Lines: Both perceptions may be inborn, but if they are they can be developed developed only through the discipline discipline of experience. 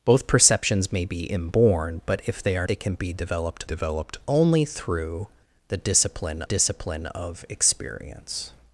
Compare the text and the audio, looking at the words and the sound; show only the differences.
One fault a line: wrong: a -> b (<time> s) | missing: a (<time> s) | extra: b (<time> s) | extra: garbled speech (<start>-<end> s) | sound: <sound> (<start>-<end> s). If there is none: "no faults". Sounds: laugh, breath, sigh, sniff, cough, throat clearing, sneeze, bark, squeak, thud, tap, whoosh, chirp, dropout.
no faults